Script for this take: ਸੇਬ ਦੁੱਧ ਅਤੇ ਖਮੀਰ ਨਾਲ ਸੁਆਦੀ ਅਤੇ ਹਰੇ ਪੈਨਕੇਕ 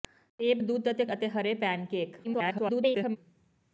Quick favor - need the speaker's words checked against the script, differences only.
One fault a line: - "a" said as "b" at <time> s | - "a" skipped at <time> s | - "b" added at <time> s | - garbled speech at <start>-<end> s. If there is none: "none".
- "ਖਮੀਰ ਨਾਲ ਸੁਆਦੀ" skipped at 1.0 s
- garbled speech at 2.2-3.2 s